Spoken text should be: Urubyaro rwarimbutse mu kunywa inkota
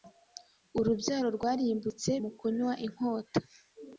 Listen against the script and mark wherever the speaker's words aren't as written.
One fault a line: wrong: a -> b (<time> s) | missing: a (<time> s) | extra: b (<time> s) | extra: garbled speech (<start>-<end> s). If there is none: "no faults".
no faults